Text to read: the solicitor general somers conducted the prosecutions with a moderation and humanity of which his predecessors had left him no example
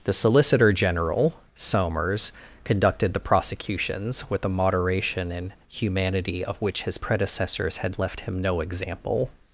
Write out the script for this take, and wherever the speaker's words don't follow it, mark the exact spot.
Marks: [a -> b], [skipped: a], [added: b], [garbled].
the solicitor general somers conducted the prosecutions with a moderation and humanity of which his predecessors had left him no example